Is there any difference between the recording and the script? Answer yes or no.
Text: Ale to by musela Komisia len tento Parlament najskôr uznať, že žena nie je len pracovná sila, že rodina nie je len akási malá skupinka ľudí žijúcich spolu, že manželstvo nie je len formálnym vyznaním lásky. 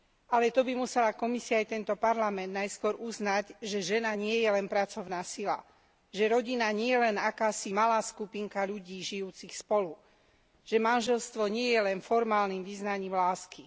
yes